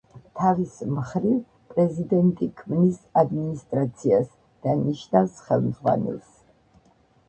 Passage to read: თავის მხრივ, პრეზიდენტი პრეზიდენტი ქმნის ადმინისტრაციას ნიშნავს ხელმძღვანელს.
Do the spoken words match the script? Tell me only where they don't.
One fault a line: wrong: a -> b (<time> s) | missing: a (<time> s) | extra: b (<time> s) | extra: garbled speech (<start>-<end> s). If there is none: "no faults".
missing: პრეზიდენტი (2.5 s)
extra: და (4.7 s)